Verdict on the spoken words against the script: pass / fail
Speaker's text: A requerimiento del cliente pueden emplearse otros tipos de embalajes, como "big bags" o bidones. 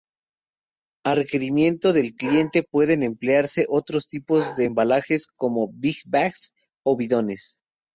pass